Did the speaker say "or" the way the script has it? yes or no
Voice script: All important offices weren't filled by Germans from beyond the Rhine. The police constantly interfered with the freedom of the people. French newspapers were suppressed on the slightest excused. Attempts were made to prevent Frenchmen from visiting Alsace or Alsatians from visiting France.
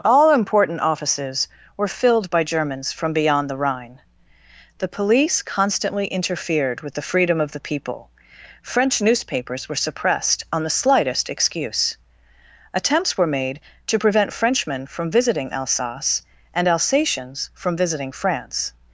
no